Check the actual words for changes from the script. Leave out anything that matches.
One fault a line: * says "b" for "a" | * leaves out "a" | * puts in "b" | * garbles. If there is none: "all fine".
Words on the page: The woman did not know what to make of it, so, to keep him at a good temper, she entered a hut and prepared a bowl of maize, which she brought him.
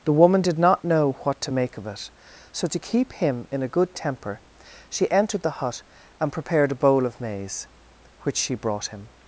* says "in" for "at"
* says "the" for "a"